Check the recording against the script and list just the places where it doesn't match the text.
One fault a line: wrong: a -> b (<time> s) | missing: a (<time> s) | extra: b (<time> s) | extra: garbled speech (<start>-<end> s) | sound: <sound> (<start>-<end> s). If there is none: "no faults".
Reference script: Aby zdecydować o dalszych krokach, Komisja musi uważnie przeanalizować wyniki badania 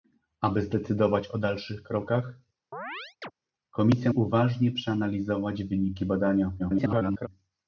sound: chirp (2.7-3.3 s)
missing: musi (4.1 s)
extra: garbled speech (6.6-7.3 s)